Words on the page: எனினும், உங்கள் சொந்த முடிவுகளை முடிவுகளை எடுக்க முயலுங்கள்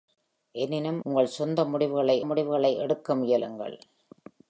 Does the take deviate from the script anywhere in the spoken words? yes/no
no